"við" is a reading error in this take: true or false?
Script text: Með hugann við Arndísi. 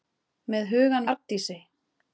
true